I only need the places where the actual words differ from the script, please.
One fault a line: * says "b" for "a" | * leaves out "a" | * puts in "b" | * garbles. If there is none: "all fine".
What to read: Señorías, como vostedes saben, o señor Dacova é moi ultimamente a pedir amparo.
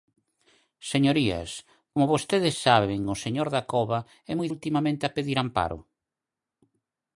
all fine